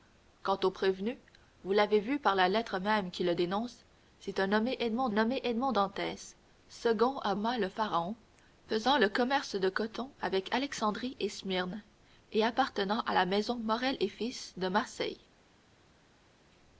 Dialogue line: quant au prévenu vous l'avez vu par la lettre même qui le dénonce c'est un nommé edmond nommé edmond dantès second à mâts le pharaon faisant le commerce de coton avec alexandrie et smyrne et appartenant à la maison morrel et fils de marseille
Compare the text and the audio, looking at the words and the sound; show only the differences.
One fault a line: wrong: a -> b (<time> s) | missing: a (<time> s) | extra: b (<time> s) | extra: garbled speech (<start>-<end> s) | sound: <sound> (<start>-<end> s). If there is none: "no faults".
no faults